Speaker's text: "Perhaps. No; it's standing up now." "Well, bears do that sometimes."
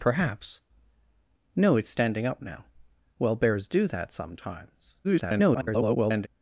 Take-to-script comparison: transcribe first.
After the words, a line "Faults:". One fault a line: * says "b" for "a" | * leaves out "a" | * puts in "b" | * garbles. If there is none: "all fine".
"Perhaps. No; it's standing up now." "Well, bears do that sometimes." [garbled]
Faults:
* garbles